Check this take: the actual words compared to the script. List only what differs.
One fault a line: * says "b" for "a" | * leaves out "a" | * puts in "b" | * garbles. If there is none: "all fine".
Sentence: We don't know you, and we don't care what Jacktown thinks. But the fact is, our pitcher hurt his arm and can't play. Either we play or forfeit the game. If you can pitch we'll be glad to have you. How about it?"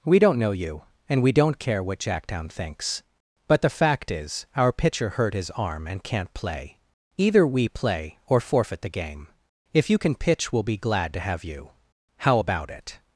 all fine